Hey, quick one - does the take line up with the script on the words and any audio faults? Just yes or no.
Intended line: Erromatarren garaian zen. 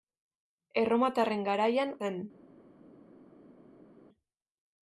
yes